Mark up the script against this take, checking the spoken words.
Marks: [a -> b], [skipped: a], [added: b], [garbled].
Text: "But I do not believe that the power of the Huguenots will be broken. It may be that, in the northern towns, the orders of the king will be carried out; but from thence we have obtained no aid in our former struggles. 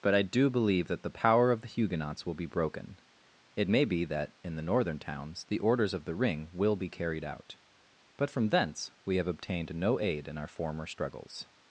"But I do [skipped: not] believe that the power of the Huguenots will be broken. It may be that, in the northern towns, the orders of the [king -> ring] will be carried out; but from thence we have obtained no aid in our former struggles.